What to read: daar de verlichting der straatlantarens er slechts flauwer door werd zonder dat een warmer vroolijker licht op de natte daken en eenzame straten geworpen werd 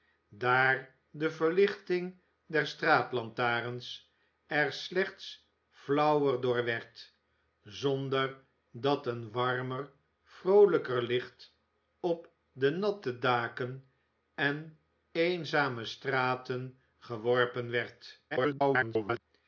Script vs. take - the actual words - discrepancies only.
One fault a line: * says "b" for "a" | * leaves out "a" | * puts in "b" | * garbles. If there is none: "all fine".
* garbles